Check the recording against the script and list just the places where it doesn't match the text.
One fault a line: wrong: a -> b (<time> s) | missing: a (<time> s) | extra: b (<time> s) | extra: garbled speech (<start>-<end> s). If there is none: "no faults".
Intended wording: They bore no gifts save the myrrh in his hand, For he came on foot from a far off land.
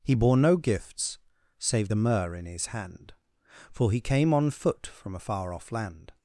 wrong: They -> He (0.0 s)